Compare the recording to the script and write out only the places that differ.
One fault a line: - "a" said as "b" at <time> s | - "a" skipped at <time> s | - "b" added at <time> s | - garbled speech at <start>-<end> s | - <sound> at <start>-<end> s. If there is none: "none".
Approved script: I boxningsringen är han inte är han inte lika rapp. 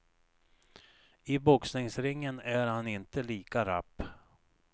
- "är han inte" skipped at 3.2 s